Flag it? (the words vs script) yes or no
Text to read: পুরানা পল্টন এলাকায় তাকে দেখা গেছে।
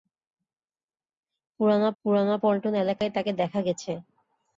yes